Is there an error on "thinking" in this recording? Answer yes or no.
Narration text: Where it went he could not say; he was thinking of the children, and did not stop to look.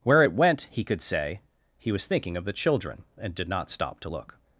no